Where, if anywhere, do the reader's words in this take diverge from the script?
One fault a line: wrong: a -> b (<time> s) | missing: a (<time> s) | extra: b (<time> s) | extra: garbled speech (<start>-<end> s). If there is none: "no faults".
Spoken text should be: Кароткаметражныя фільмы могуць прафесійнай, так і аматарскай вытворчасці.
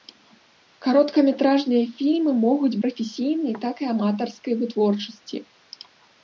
no faults